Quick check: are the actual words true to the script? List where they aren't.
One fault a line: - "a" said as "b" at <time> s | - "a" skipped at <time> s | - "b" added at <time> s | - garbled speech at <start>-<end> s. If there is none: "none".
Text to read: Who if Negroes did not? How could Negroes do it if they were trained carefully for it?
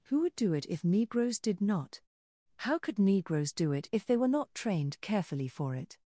- "would do it" added at 0.2 s
- "not" added at 4.3 s